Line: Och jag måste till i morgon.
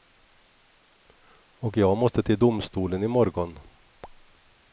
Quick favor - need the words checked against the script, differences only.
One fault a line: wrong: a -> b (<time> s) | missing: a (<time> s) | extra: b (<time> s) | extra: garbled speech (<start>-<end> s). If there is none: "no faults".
extra: domstolen (2.4 s)